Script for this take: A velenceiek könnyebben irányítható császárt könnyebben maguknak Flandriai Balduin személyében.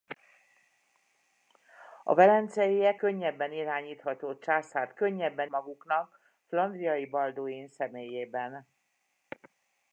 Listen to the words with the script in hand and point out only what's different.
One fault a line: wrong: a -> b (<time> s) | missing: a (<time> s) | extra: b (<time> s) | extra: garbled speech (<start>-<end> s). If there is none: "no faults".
no faults